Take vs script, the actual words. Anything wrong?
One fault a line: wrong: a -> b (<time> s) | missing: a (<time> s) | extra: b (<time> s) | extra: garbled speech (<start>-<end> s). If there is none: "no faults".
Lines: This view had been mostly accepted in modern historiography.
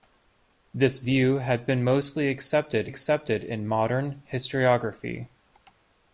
extra: accepted (2.8 s)